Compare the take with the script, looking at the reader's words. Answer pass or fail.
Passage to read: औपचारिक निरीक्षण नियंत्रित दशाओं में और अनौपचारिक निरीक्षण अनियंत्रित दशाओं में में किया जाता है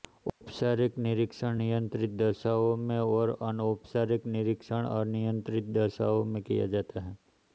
fail